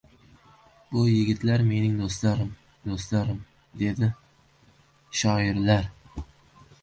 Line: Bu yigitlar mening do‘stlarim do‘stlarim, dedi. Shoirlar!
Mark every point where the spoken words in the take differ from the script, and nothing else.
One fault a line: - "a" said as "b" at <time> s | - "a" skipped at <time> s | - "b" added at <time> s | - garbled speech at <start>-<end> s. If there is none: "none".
none